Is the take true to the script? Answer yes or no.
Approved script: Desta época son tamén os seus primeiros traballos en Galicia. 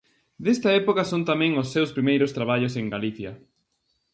yes